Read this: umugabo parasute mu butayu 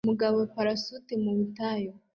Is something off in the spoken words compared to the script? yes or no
no